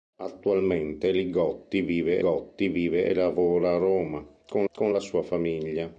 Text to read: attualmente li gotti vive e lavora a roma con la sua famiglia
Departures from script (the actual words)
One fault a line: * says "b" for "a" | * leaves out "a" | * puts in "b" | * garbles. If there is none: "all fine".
* puts in "gotti vive"
* puts in "con"